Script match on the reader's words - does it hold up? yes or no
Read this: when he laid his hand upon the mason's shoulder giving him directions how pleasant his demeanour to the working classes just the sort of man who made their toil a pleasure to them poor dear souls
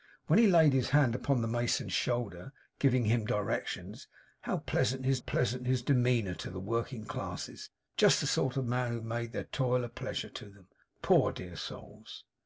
no